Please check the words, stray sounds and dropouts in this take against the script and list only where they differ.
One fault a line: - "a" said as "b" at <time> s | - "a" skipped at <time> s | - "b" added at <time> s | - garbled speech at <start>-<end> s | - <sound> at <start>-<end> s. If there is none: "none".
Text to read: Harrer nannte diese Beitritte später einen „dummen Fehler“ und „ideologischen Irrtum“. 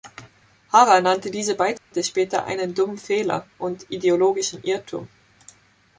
- dropout at 1.8-1.9 s